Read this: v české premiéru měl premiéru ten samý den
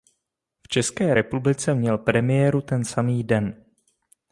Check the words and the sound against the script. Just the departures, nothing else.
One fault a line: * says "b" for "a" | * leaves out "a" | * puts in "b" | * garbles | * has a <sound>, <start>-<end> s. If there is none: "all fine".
* says "republice" for "premiéru"